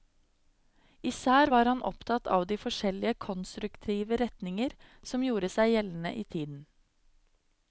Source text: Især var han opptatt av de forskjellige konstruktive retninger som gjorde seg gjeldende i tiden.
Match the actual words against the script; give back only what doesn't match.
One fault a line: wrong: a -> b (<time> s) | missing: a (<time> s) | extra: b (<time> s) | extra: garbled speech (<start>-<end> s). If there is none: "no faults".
no faults